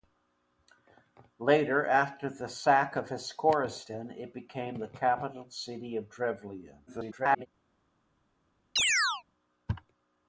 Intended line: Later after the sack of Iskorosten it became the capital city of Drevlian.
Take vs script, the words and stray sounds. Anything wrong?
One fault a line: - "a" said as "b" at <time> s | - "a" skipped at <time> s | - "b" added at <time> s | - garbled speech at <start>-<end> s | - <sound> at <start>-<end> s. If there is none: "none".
- garbled speech at 6.9-7.5 s
- chirp at 8.8-9.2 s